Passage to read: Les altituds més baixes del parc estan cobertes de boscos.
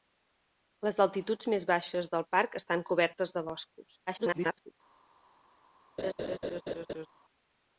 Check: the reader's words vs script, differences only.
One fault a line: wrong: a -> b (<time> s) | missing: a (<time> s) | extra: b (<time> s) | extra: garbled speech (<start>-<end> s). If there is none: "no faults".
extra: garbled speech (4.1-4.7 s)